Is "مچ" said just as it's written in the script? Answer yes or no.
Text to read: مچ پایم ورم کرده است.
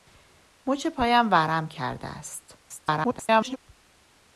yes